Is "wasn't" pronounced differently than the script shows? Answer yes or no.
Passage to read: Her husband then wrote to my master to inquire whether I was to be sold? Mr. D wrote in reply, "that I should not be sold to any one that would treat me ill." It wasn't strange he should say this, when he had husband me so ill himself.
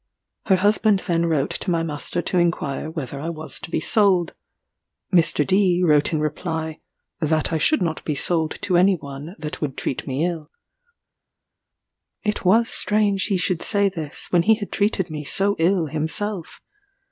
yes